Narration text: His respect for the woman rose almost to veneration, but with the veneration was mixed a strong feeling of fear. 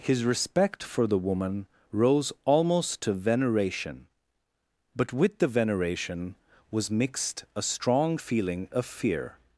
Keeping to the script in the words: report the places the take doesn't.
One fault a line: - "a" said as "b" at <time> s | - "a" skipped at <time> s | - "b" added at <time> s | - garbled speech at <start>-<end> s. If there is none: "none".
none